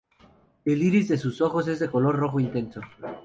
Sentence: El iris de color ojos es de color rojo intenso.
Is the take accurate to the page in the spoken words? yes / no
no